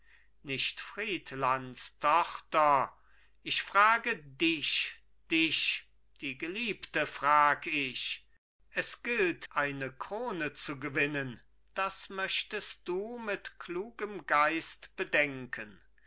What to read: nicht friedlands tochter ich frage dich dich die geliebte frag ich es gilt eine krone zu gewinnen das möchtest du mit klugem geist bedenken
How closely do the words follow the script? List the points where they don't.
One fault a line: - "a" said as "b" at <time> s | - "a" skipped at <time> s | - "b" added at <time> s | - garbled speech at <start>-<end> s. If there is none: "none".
none